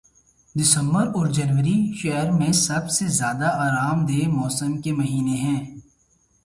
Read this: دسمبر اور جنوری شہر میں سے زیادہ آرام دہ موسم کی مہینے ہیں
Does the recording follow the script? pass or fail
fail